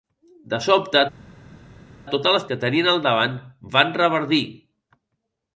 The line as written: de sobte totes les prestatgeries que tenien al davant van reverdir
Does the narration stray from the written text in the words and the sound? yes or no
yes